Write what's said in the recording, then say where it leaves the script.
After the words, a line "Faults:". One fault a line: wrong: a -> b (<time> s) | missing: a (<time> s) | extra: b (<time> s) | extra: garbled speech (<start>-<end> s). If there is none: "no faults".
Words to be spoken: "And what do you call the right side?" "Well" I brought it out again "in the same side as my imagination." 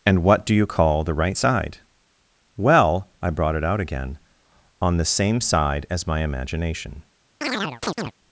"And what do you call the right side?" "Well" I brought it out again "on the same side as my imagination."
Faults:
wrong: in -> on (4.8 s)